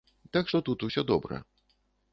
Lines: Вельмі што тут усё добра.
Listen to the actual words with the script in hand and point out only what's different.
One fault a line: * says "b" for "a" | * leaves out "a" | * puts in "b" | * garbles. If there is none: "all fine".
* says "Так" for "Вельмі"